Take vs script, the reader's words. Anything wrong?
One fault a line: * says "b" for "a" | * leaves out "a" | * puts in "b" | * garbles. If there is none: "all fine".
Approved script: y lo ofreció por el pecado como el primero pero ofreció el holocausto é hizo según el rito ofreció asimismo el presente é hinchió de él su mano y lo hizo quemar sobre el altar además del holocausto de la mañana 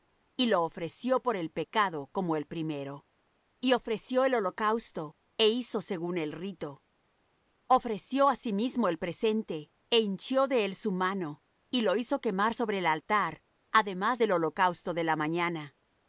* says "y" for "pero"